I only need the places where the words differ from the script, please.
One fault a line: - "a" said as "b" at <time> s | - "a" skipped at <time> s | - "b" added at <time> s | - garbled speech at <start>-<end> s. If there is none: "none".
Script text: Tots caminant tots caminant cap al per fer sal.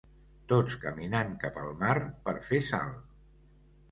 - "tots caminant" skipped at 1.3 s
- "mar" added at 1.8 s